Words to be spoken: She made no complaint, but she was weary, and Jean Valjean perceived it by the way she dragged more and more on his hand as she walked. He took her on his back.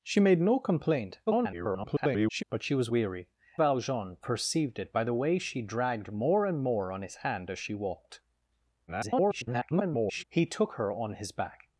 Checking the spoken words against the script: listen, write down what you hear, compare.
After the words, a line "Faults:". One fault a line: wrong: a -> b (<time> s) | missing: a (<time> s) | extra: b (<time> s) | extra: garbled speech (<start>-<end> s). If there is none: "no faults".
She made no complaint, [garbled] but she was weary, Valjean perceived it by the way she dragged more and more on his hand as she walked. [garbled] He took her on his back.
Faults:
extra: garbled speech (1.3-2.4 s)
missing: and Jean (3.3 s)
extra: garbled speech (8.9-10.2 s)